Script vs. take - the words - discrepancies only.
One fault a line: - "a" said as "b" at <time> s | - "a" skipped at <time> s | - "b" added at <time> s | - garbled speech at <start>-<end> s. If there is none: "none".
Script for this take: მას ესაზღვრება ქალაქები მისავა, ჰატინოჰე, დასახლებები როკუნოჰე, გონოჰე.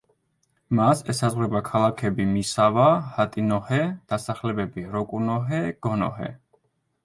none